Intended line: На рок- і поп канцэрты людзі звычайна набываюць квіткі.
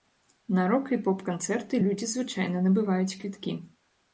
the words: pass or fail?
pass